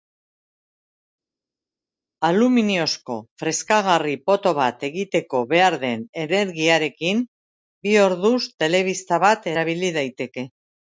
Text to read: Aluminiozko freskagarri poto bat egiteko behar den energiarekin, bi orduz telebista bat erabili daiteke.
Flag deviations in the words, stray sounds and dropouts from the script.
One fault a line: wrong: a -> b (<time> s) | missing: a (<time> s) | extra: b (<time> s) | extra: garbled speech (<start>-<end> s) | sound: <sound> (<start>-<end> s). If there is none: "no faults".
no faults